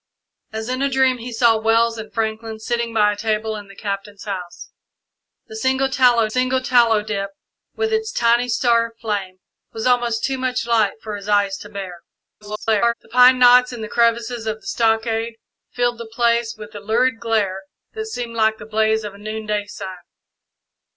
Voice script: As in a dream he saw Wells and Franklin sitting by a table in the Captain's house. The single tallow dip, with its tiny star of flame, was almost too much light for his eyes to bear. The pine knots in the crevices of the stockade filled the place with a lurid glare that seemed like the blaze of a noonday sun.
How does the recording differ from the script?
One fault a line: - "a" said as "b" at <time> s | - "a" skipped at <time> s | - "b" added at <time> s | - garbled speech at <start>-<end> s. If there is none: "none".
- "single tallow" added at 6.3 s
- garbled speech at 12.4-12.9 s